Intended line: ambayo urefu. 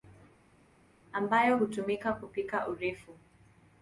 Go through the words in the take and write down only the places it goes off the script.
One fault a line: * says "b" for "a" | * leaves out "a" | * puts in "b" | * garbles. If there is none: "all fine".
* puts in "hutumika kupika"